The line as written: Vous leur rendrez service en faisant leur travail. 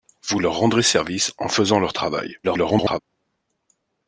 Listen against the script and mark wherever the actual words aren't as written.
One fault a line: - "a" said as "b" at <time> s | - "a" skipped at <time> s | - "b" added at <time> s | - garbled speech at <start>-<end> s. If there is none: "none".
- garbled speech at 2.4-3.0 s